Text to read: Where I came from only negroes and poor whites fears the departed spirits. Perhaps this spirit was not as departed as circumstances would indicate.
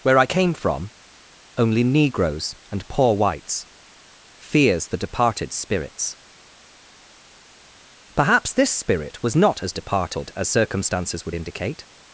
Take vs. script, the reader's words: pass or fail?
pass